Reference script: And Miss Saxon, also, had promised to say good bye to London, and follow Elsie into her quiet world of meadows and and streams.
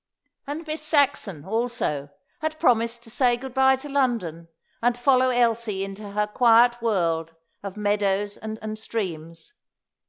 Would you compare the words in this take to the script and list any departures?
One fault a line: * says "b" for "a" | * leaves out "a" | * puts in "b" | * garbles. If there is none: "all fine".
all fine